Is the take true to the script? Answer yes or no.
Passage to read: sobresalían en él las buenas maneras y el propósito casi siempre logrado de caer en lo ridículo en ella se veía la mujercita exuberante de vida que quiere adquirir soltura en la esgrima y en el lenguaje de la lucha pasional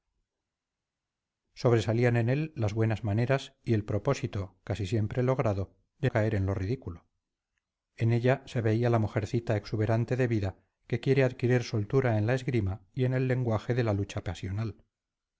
yes